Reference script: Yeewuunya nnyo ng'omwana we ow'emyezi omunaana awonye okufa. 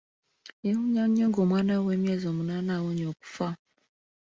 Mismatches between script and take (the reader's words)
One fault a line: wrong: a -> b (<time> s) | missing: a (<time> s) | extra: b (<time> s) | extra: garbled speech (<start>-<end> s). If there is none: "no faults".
no faults